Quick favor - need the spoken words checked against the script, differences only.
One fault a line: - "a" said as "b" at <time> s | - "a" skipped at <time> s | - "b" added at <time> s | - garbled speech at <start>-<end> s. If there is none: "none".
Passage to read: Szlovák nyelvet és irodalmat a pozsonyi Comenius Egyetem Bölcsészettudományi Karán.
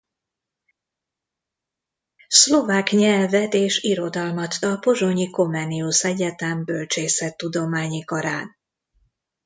none